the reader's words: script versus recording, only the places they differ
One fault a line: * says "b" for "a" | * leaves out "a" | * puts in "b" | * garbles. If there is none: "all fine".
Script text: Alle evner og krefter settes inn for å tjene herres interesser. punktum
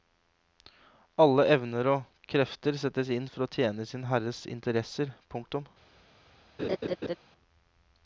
* puts in "sin"